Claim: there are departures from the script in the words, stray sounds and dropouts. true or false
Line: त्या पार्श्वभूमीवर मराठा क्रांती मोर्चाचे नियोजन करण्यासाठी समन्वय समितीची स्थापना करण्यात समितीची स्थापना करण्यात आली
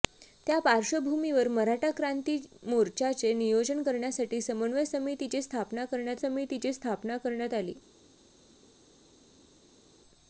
false